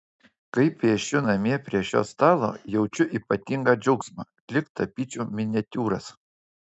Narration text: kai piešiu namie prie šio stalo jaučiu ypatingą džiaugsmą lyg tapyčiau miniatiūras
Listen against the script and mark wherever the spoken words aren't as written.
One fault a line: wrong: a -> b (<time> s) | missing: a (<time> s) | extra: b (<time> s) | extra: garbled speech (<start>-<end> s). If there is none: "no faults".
no faults